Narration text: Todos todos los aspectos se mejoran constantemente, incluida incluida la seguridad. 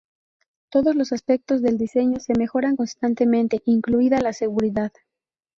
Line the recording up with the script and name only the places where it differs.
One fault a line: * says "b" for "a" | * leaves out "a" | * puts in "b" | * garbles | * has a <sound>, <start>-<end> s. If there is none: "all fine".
* leaves out "todos"
* puts in "del diseño"
* leaves out "incluida"